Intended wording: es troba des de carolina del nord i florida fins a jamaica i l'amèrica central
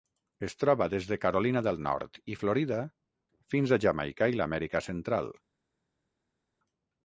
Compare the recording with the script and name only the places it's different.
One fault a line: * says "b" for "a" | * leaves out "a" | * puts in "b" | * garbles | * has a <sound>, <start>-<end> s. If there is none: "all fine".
all fine